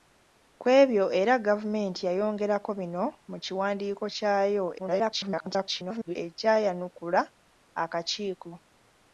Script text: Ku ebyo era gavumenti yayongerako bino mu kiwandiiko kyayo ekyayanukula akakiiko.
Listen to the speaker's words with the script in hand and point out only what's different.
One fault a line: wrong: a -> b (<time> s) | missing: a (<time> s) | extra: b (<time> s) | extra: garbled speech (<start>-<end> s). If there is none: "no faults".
extra: garbled speech (4.8-6.2 s)